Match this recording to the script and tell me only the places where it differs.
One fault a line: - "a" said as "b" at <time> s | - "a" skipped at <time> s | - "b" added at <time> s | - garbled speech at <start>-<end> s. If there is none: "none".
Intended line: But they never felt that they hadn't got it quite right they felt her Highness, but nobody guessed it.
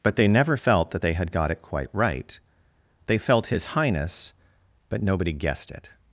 - "hadn't" said as "had" at 1.1 s
- "her" said as "his" at 3.5 s